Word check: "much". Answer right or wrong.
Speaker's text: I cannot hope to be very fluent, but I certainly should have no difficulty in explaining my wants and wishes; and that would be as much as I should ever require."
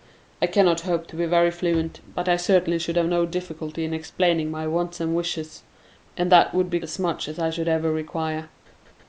right